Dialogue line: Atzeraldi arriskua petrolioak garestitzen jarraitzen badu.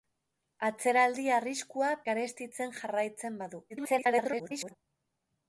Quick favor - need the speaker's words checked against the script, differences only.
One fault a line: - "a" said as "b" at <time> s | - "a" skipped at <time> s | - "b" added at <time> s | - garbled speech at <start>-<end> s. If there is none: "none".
- "petrolioak" skipped at 1.9 s
- garbled speech at 3.7-4.7 s